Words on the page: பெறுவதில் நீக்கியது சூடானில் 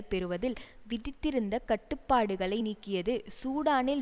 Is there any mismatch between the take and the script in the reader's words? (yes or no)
yes